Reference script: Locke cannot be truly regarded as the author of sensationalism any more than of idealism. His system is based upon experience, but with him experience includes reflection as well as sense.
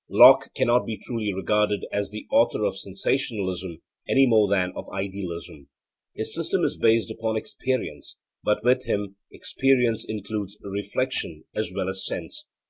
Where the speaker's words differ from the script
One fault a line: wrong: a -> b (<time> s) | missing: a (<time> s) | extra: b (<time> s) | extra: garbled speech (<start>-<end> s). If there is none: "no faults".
no faults